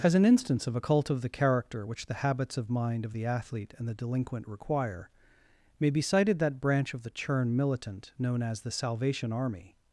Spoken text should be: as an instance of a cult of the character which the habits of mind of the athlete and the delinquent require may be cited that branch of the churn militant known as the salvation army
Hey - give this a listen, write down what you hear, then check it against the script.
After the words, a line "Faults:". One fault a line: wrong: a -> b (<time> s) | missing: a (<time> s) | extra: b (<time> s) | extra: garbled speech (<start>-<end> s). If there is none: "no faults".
as an instance of a cult of the character which the habits of mind of the athlete and the delinquent require may be cited that branch of the churn militant known as the salvation army
Faults:
no faults